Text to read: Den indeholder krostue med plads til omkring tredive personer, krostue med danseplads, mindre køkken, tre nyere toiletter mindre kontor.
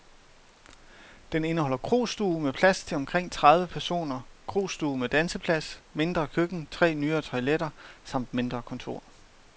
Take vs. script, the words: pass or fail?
fail